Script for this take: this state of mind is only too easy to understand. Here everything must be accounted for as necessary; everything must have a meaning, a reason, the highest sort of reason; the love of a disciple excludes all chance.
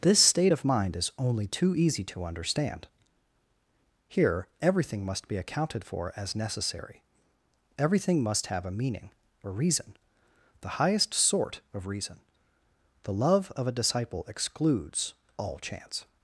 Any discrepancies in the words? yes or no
no